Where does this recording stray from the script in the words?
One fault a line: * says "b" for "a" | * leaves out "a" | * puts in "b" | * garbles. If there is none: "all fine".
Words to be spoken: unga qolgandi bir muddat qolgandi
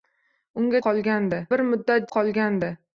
all fine